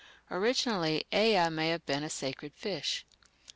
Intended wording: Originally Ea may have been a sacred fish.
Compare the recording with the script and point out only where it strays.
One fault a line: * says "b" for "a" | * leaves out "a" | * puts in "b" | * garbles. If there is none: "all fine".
all fine